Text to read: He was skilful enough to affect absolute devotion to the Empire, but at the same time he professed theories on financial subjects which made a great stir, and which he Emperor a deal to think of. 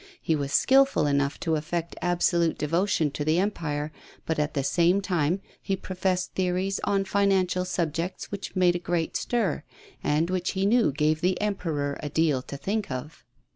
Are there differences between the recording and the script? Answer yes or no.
yes